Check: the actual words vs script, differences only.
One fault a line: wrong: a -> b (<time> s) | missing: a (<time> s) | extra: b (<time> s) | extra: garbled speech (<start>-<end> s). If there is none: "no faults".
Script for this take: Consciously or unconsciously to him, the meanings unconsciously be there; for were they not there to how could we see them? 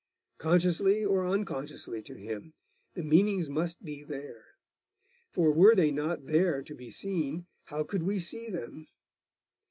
wrong: unconsciously -> must (3.5 s)
extra: be seen (6.7 s)